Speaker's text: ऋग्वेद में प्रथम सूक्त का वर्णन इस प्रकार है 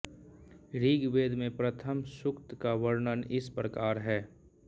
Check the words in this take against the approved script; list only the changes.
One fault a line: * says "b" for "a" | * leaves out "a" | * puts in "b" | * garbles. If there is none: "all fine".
all fine